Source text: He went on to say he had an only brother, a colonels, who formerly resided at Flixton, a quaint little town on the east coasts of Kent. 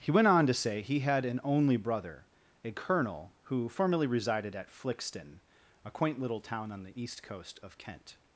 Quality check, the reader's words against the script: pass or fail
fail